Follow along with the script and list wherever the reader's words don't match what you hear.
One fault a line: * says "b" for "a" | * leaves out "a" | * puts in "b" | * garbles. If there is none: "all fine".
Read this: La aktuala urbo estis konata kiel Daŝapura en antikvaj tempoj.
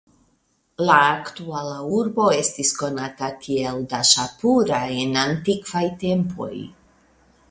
all fine